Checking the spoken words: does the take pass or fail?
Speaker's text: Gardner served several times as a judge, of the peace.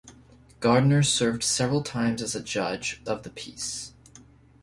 pass